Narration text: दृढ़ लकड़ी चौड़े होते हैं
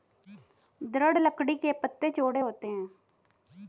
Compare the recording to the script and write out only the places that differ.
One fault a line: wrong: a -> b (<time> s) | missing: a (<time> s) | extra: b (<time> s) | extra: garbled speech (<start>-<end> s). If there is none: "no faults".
extra: के पत्ते (1.5 s)